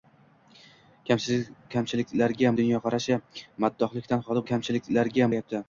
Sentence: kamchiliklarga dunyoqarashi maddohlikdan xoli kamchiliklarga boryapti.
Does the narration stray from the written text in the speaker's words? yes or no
no